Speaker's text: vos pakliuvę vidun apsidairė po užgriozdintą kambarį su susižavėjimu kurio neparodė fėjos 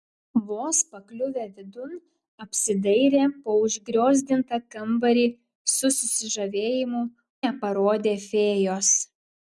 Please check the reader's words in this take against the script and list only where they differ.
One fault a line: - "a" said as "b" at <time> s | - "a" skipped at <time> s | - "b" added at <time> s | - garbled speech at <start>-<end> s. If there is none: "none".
- "kurio" skipped at 7.0 s